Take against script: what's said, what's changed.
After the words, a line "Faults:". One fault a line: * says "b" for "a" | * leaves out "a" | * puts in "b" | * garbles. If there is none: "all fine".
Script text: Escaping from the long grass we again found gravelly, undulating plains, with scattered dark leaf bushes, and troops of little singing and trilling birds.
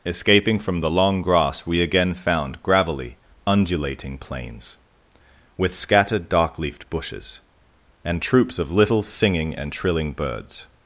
Escaping from the long grass we again found gravelly, undulating plains, with scattered dark leafed bushes, and troops of little singing and trilling birds.
Faults:
* says "leafed" for "leaf"